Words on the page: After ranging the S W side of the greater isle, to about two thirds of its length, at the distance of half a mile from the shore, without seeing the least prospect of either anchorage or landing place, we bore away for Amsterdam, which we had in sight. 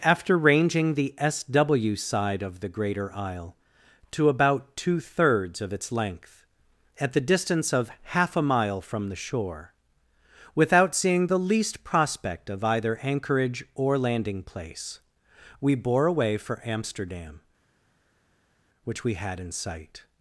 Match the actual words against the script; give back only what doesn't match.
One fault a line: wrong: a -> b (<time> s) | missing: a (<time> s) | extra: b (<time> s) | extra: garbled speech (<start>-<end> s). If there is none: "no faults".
no faults